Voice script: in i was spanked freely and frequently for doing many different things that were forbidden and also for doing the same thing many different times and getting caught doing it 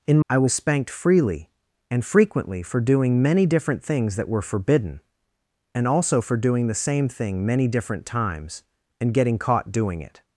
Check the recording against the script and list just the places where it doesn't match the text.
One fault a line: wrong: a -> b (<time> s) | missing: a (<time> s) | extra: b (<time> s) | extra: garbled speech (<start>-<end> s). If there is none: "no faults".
no faults